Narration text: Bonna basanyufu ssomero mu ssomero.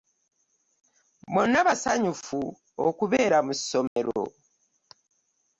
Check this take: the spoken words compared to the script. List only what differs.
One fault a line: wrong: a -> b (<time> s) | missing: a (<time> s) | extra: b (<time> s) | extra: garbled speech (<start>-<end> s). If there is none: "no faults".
wrong: ssomero -> okubeera (2.9 s)